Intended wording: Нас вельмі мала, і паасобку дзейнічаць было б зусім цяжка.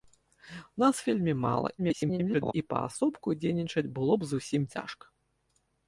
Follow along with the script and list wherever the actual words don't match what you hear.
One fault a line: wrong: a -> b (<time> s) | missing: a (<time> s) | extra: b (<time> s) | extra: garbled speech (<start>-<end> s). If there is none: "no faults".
extra: garbled speech (1.8-2.5 s)